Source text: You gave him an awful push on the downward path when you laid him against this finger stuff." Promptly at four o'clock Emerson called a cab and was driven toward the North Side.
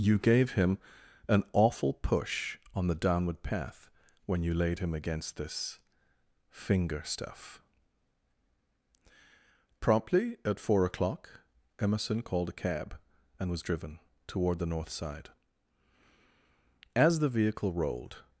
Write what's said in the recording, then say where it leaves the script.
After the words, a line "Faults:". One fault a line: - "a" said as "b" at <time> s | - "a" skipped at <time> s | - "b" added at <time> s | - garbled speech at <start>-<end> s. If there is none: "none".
You gave him an awful push on the downward path when you laid him against this finger stuff." Promptly at four o'clock Emerson called a cab and was driven toward the North Side. As the vehicle rolled
Faults:
- "As the vehicle rolled" added at 16.9 s